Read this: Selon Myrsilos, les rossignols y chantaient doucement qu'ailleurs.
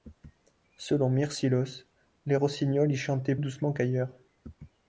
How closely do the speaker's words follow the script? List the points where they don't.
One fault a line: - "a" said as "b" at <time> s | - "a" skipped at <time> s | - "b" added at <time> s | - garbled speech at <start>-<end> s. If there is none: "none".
none